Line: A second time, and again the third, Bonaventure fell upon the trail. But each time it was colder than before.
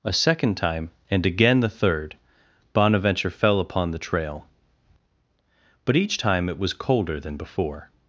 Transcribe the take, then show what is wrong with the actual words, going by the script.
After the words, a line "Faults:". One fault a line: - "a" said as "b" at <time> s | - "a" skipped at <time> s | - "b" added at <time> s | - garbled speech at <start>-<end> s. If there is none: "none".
A second time, and again the third, Bonaventure fell upon the trail. But each time it was colder than before.
Faults:
none